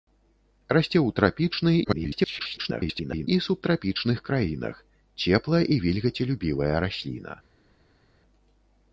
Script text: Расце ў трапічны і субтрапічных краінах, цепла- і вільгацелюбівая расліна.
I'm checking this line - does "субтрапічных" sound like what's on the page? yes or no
yes